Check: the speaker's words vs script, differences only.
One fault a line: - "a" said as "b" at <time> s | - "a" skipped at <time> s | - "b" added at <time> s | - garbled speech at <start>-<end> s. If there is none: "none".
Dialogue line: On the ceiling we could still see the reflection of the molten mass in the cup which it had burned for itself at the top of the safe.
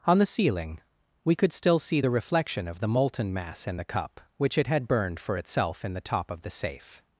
- "at" said as "in" at 5.8 s